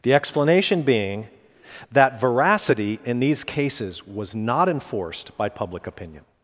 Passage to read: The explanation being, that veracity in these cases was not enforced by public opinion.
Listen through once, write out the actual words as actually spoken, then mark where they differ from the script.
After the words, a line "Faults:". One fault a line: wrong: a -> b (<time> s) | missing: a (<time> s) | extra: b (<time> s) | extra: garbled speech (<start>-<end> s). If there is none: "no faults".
The explanation being, that veracity in these cases was not enforced by public opinion.
Faults:
no faults